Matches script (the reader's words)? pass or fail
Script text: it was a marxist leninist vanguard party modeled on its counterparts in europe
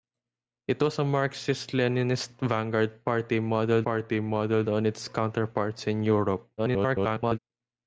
fail